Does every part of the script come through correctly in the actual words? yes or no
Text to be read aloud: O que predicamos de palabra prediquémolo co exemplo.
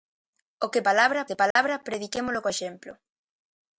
no